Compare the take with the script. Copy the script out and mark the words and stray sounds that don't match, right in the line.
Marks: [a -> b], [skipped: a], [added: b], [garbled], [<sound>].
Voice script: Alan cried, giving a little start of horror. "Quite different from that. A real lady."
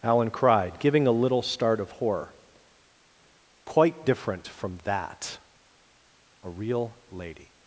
Alan cried, giving a little start of horror. "Quite different from that. A real lady."